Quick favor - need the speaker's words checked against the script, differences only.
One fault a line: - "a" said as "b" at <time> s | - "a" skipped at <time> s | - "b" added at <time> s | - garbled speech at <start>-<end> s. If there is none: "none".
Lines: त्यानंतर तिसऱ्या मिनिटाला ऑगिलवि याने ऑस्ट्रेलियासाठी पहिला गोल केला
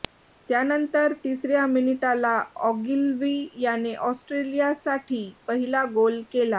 none